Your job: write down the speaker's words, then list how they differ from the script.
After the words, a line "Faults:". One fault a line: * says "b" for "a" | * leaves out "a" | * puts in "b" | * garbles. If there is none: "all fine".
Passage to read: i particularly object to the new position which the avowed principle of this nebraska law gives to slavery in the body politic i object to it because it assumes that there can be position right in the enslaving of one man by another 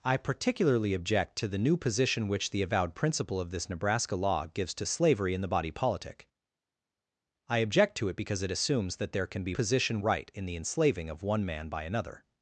i particularly object to the new position which the avowed principle of this nebraska law gives to slavery in the body politic i object to it because it assumes that there can be position right in the enslaving of one man by another
Faults:
all fine